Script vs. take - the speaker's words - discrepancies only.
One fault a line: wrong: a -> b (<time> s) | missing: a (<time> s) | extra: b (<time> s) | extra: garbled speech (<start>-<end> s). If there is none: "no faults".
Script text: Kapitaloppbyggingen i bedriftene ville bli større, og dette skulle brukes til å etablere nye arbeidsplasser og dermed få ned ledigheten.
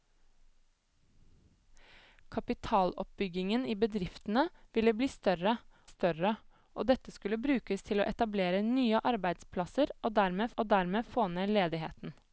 extra: større (5.9 s)
extra: og dermed (10.6 s)